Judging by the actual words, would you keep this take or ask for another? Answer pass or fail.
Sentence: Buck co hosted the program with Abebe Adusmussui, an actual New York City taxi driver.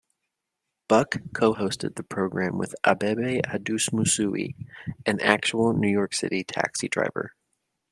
pass